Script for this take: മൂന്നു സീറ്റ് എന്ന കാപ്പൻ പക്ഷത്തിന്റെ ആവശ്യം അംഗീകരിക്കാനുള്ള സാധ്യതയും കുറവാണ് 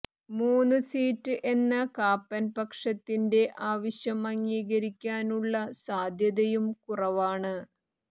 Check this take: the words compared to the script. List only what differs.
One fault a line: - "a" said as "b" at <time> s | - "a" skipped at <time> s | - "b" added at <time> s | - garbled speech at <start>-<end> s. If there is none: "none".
none